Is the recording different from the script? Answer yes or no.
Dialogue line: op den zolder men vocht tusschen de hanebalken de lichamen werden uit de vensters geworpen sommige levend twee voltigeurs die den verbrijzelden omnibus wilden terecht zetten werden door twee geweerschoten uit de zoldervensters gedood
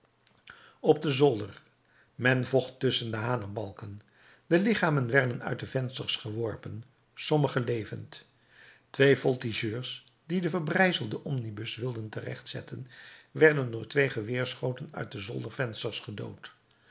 no